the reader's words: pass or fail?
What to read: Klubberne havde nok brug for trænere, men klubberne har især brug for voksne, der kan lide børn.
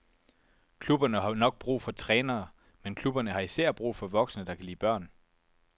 fail